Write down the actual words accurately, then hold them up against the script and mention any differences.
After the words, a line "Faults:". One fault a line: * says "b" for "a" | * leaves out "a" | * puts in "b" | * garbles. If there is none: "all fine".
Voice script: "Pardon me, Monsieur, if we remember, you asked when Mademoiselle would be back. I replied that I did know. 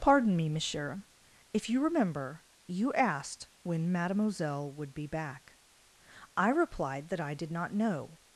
"Pardon me, Monsieur, if you remember, you asked when Mademoiselle would be back. I replied that I did not know.
Faults:
* says "you" for "we"
* puts in "not"